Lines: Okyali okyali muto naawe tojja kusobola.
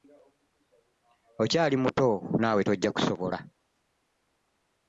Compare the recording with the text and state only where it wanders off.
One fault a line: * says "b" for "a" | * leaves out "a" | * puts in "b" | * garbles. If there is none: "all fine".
* leaves out "okyali"